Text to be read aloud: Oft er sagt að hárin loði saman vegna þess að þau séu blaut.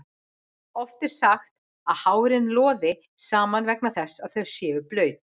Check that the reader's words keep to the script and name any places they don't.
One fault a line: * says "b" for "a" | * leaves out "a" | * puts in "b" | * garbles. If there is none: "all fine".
all fine